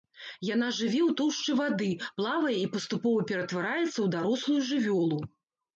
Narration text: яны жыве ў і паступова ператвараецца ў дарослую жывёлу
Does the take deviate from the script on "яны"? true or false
true